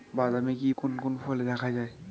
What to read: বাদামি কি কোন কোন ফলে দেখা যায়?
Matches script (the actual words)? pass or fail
pass